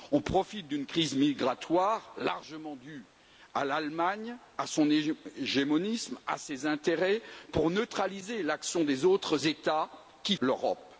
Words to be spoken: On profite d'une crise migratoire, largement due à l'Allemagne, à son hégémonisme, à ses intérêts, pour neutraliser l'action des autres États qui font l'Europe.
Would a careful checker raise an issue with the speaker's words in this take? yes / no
yes